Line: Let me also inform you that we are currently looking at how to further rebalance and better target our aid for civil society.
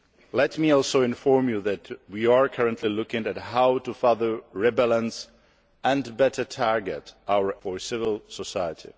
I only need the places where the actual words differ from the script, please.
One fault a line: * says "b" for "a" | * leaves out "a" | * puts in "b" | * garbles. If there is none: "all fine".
* leaves out "aid"